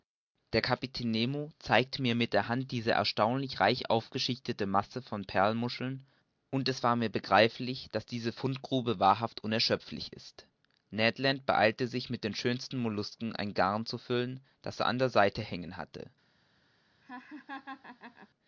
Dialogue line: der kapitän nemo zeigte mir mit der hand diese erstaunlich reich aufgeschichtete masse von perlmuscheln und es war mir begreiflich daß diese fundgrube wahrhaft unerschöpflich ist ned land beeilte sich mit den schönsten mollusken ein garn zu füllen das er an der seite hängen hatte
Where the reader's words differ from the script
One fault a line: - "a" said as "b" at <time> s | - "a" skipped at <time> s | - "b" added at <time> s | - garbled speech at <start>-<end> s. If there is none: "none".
none